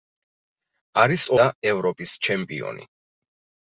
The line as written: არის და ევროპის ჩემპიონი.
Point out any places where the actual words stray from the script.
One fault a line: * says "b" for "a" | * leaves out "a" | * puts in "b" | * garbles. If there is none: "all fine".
all fine